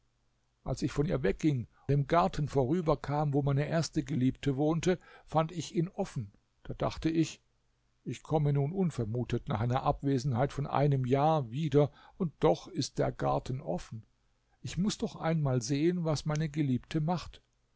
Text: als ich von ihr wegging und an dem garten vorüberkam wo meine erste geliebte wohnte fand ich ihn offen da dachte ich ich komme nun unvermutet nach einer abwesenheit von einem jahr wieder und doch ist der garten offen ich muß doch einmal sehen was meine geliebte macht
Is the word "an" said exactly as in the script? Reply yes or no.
no